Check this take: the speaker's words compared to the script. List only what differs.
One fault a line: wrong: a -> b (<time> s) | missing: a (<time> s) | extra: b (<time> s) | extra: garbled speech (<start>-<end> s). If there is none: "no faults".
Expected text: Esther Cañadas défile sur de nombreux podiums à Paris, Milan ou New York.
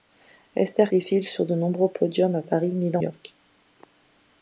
missing: Cañadas (0.9 s)
missing: ou New (3.0 s)